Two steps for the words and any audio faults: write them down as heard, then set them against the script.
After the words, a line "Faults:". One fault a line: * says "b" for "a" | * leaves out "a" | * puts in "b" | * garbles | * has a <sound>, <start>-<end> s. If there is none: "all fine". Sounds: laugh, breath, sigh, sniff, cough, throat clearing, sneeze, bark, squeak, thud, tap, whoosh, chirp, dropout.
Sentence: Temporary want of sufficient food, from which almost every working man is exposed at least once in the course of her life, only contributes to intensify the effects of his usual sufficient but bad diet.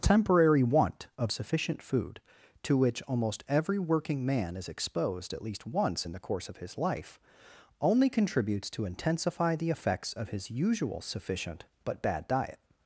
Temporary want of sufficient food, to which almost every working man is exposed at least once in the course of his life, only contributes to intensify the effects of his usual sufficient but bad diet.
Faults:
* says "to" for "from"
* says "his" for "her"